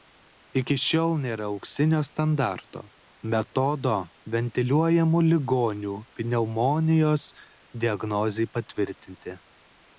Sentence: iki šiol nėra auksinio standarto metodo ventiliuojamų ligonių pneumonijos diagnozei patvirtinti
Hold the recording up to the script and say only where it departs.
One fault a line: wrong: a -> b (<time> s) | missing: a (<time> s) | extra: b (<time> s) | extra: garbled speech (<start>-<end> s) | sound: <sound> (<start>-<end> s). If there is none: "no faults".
no faults